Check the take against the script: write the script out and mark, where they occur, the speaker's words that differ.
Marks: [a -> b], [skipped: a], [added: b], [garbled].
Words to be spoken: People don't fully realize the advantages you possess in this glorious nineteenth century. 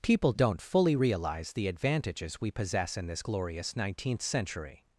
People don't fully realize the advantages [you -> we] possess in this glorious nineteenth century.